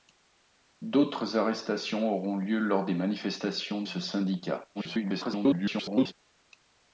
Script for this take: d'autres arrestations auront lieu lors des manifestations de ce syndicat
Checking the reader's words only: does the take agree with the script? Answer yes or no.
no